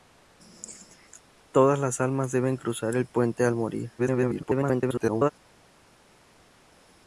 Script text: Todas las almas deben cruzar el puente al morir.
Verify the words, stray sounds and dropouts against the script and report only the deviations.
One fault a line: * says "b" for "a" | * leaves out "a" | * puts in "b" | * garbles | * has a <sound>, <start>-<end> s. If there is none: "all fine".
* garbles